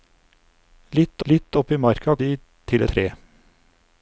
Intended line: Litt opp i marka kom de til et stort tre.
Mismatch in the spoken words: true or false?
true